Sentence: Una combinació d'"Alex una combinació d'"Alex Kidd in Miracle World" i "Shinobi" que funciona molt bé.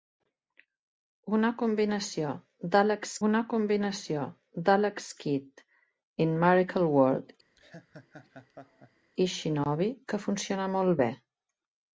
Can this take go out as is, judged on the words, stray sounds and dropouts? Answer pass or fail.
fail